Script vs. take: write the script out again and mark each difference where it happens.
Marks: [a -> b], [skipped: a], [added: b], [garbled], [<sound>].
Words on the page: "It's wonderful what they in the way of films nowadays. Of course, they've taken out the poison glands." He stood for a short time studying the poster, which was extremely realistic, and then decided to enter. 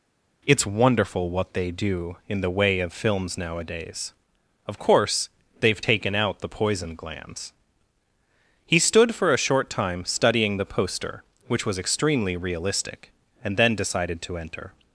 "It's wonderful what they [added: do] in the way of films nowadays. Of course, they've taken out the poison glands." He stood for a short time studying the poster, which was extremely realistic, and then decided to enter.